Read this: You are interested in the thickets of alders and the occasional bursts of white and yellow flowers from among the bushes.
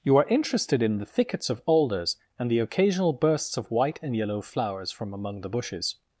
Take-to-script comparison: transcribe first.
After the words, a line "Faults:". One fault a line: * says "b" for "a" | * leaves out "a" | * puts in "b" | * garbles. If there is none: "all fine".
You are interested in the thickets of alders and the occasional bursts of white and yellow flowers from among the bushes.
Faults:
all fine